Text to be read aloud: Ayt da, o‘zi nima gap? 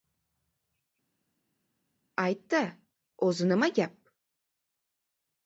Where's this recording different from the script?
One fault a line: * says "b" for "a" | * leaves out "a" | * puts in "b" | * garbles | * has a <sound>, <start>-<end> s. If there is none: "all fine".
all fine